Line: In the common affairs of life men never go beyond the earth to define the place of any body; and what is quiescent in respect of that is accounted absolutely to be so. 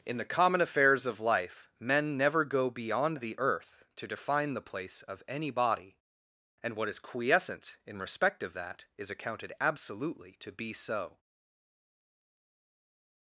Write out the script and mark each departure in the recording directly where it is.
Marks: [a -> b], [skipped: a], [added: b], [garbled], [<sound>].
In the common affairs of life men never go beyond the earth to define the place of any body; and what is quiescent in respect of that is accounted absolutely to be so.